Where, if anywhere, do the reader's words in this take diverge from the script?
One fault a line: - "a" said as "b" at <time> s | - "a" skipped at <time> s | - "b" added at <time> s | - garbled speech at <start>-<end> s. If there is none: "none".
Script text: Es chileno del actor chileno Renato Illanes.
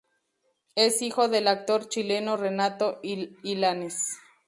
- "chileno" said as "hijo" at 1.0 s